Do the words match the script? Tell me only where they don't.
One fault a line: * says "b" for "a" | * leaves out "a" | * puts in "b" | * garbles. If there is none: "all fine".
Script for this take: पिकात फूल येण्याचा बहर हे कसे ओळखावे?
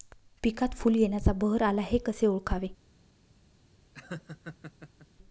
* puts in "आला"